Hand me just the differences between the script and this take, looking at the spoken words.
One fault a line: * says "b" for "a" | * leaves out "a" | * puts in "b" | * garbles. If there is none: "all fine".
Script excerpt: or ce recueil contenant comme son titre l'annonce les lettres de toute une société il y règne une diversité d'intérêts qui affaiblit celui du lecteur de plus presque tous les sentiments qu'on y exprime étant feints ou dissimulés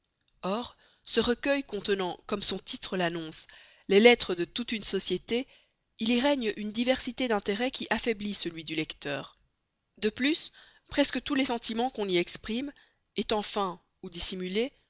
all fine